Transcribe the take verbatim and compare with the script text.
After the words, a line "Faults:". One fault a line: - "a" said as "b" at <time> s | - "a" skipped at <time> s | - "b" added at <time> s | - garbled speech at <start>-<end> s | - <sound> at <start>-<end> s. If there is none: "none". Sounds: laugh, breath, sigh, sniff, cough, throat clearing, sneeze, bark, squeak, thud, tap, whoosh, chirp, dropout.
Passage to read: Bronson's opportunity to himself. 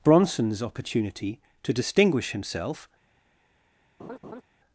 Bronson's opportunity to distinguish himself.
Faults:
- "distinguish" added at 1.7 s
- laugh at 4.0-4.4 s